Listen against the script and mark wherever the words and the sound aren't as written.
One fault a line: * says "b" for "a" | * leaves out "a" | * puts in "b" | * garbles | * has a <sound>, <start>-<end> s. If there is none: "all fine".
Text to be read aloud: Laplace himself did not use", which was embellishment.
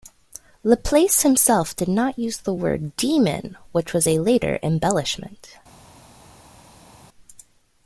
* puts in "the word demon"
* puts in "a later"